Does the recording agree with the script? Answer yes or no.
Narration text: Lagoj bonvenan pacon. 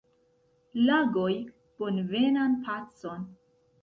yes